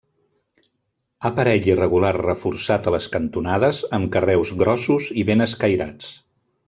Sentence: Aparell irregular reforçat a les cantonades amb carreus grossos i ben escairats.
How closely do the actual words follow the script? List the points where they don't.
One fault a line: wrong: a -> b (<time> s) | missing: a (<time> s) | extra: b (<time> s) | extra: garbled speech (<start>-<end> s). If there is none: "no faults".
no faults